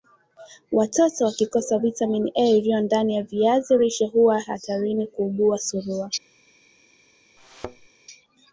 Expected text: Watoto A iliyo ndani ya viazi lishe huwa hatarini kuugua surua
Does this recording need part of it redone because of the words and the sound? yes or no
yes